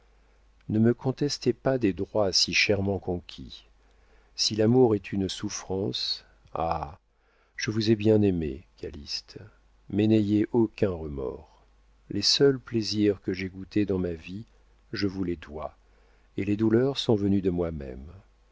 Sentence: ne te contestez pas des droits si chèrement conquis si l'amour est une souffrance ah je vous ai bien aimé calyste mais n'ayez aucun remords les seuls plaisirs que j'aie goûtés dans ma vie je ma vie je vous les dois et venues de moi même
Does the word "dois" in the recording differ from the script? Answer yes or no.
yes